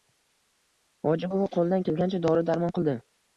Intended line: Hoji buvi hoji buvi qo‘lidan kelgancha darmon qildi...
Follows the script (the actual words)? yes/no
no